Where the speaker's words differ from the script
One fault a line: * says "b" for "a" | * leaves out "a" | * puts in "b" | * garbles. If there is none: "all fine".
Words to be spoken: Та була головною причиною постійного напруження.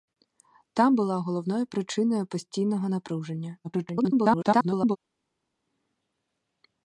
* garbles